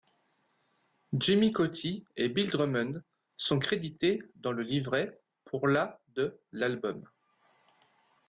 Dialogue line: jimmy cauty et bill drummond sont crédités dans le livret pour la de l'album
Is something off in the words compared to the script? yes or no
no